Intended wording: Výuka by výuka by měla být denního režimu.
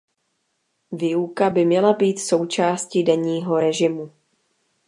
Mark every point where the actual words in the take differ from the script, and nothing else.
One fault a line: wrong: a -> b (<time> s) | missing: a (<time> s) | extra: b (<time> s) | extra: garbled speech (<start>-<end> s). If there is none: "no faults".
missing: výuka by (1.6 s)
extra: součástí (2.2 s)